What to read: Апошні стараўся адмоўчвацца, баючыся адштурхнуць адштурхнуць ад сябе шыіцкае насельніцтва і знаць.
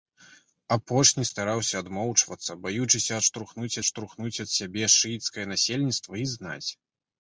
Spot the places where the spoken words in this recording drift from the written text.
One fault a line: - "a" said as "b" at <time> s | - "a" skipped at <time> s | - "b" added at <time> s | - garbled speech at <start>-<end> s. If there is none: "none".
none